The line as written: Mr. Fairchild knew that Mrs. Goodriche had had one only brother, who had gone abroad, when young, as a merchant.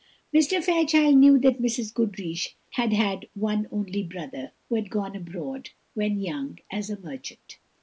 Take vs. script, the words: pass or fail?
pass